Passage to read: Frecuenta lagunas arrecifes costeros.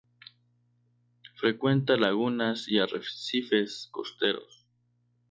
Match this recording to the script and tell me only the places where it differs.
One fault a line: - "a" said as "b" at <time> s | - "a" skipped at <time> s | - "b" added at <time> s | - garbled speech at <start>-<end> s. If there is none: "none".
- "y" added at 2.7 s